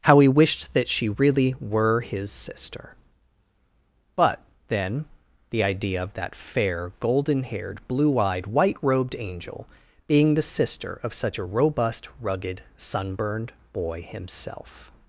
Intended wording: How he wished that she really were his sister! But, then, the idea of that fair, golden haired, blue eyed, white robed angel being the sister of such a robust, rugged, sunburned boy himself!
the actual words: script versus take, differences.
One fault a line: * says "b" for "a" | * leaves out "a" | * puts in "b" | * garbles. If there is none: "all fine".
all fine